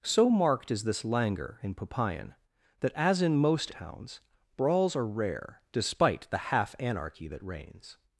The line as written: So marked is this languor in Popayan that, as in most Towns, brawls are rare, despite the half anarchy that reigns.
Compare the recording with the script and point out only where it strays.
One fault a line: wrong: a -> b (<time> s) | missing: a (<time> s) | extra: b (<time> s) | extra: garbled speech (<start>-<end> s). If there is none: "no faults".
no faults